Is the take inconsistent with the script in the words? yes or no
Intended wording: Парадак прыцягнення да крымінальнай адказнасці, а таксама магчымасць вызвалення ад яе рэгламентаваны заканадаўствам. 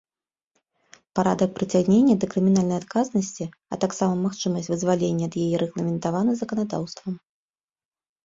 no